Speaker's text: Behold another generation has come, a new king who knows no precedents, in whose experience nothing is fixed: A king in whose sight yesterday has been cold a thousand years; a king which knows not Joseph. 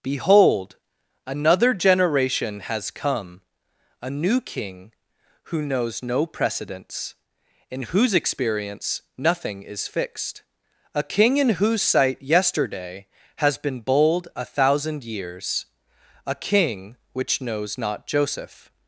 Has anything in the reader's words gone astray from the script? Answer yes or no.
yes